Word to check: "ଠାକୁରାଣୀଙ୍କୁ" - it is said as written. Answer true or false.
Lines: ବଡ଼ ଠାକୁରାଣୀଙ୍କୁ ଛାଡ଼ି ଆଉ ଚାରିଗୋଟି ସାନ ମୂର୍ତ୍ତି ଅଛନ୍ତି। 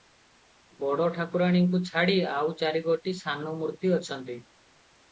true